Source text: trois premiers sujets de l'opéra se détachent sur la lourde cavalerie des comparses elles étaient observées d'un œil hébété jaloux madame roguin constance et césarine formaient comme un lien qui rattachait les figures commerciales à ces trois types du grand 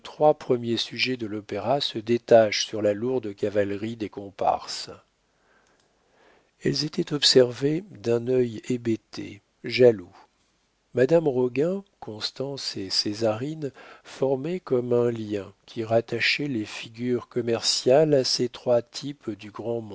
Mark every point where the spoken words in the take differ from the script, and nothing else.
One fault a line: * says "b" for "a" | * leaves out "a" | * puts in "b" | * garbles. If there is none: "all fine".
all fine